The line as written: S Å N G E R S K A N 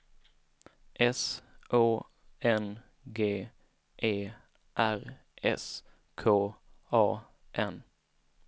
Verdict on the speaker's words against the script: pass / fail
pass